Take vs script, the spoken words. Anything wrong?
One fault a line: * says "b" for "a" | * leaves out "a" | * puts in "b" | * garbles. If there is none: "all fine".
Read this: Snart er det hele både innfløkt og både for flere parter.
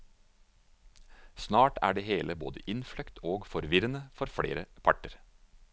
* says "forvirrende" for "både"